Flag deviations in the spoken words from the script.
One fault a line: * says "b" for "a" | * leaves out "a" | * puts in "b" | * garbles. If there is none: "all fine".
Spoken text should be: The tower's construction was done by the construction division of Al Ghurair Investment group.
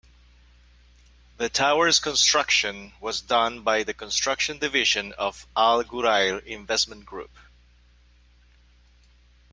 all fine